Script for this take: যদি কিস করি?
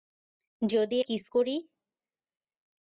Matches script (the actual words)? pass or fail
pass